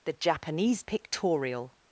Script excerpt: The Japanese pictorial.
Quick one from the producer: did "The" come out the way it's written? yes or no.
yes